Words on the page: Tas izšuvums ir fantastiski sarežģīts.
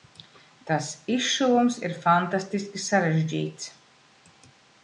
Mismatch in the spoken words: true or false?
false